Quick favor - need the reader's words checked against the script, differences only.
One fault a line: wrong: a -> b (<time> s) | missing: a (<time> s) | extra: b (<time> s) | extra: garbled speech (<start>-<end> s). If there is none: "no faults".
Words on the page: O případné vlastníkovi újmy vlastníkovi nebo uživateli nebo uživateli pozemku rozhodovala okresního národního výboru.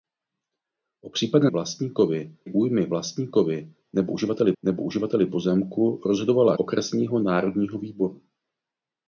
no faults